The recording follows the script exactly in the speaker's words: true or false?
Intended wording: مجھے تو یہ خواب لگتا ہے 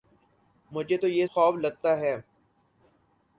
true